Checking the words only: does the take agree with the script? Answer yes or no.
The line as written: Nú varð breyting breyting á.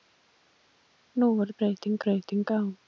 yes